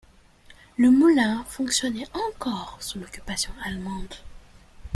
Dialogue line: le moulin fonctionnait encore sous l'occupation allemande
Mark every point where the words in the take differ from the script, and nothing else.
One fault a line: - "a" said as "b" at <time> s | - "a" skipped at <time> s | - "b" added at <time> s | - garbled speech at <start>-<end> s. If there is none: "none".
none